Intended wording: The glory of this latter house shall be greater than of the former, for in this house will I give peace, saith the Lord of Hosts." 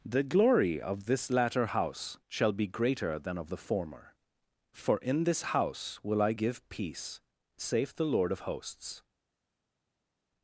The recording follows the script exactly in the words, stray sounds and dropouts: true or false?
true